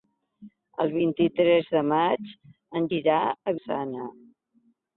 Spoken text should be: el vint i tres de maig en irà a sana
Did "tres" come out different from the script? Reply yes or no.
no